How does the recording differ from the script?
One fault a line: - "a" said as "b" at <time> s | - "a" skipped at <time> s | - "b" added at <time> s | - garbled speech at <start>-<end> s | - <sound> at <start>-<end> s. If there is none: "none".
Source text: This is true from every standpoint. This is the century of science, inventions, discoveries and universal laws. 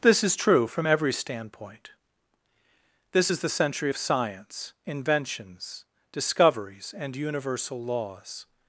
none